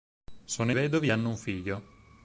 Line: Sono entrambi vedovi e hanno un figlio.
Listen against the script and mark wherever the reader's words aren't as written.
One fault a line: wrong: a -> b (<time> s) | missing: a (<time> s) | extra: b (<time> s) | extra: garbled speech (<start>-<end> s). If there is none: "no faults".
missing: entrambi (0.7 s)